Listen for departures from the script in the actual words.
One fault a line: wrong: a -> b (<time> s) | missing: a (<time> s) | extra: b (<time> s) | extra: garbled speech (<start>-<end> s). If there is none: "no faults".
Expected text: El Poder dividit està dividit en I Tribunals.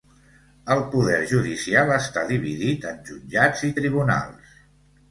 wrong: dividit -> judicial (1.3 s)
extra: Jutjats (3.1 s)